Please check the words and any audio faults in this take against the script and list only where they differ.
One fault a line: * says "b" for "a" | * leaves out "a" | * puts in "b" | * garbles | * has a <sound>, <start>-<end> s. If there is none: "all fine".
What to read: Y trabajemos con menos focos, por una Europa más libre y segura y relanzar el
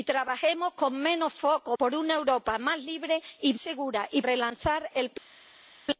all fine